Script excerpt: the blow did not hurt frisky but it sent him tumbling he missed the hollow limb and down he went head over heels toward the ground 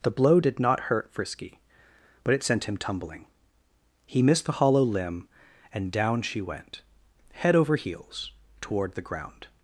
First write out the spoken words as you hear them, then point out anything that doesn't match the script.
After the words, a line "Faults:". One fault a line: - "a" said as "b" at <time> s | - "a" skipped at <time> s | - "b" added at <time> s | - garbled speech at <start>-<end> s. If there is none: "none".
the blow did not hurt frisky but it sent him tumbling he missed the hollow limb and down she went head over heels toward the ground
Faults:
- "he" said as "she" at 6.2 s